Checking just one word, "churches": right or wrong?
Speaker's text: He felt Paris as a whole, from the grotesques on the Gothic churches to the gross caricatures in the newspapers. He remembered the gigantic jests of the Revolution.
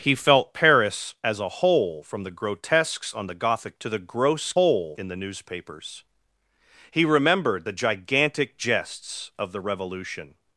wrong